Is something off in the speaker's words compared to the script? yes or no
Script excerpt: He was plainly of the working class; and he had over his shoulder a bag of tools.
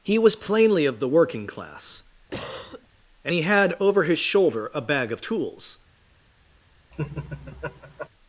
no